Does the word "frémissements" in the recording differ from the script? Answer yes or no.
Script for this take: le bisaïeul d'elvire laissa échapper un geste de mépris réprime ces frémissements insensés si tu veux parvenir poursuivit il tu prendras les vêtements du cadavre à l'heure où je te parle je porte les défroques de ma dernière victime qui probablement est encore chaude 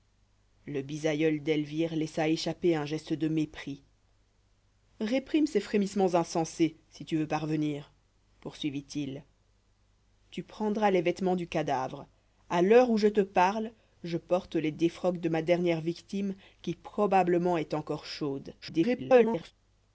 no